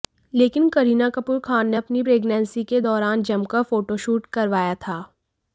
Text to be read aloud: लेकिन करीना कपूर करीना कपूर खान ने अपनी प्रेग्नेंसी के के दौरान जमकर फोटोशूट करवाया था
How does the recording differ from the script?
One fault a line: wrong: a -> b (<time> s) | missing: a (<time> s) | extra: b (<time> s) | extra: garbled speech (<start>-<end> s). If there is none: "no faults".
missing: करीना कपूर (1.4 s)
missing: के (2.8 s)